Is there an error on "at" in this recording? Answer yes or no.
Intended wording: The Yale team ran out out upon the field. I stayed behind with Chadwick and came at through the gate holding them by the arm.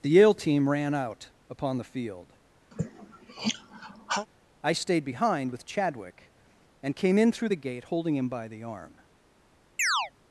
yes